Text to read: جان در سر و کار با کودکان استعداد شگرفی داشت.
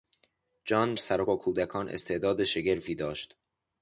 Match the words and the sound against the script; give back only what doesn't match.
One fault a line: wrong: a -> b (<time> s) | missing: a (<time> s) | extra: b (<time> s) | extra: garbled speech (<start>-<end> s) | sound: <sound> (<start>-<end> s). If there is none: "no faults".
missing: در (0.9 s)
missing: کار (1.2 s)